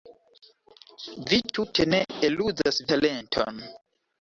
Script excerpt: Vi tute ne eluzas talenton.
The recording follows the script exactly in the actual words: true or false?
true